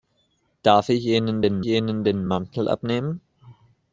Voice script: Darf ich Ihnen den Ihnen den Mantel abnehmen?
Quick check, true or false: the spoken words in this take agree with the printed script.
true